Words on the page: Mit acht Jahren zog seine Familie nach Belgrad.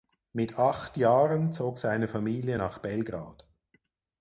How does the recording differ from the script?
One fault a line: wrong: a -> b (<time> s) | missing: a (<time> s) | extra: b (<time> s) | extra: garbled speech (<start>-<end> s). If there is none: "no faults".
no faults